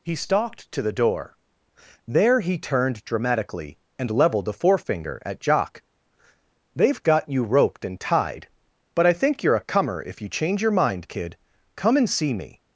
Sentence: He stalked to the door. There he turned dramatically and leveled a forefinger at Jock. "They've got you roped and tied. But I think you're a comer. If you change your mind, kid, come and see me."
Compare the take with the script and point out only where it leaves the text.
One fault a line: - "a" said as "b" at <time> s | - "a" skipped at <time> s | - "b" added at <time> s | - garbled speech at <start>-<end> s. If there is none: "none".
none